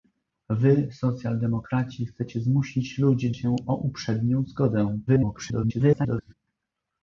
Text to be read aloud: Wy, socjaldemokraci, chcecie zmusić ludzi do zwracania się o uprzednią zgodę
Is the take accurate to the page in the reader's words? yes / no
no